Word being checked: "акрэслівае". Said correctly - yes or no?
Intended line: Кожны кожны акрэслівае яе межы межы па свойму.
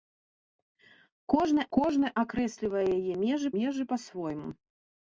yes